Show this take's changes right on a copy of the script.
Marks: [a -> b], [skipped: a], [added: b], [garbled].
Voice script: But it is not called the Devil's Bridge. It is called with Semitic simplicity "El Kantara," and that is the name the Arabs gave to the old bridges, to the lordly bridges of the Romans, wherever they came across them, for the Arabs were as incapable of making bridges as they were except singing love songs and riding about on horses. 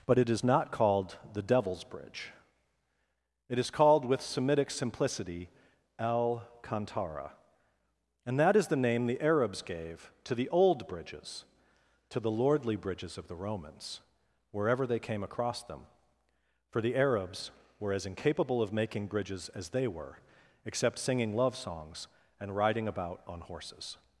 But it is not called the Devil's Bridge. It is called with Semitic simplicity "El Kantara," and that is the name the Arabs gave to the old bridges, to the lordly bridges of the Romans, wherever they came across them, for the Arabs were as incapable of making bridges as they were except singing love songs and riding about on horses.